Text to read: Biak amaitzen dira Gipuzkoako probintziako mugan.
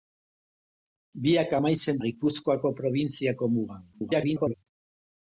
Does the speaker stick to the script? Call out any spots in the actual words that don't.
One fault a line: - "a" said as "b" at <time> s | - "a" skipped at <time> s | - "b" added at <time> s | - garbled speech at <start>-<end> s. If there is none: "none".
- "dira" skipped at 2.0 s
- garbled speech at 3.9-4.5 s